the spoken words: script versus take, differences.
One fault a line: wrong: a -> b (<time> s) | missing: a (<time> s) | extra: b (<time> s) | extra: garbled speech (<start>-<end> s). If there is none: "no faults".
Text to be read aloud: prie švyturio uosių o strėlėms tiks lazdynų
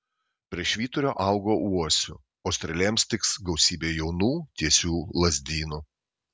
extra: augo (1.2 s)
extra: gausybė jaunų tiesių (3.5 s)